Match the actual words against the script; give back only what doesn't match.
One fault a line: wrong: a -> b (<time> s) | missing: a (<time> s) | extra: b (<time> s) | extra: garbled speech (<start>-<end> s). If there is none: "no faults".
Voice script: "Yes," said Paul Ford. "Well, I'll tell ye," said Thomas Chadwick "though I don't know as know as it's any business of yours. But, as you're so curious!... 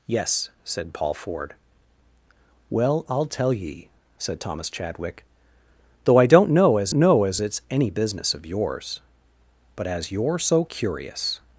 no faults